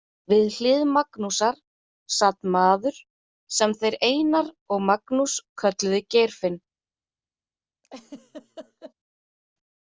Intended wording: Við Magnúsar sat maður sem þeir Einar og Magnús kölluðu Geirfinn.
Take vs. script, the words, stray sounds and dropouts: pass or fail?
fail